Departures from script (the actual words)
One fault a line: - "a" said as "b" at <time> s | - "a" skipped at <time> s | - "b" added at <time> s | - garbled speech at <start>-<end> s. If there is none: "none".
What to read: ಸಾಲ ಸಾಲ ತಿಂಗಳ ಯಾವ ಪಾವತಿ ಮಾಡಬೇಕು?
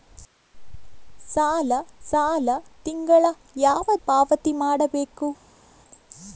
none